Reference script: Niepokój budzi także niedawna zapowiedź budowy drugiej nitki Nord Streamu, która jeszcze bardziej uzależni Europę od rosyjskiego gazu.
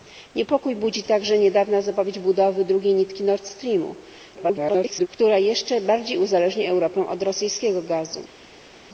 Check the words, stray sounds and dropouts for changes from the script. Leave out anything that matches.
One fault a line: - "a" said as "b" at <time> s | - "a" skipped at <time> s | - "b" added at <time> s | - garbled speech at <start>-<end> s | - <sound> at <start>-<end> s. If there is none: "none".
- garbled speech at 4.4-5.1 s